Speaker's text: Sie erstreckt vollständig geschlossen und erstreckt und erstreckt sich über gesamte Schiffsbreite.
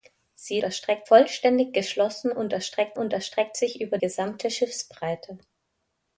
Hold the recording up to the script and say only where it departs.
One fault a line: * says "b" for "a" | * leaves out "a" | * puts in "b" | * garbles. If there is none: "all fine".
all fine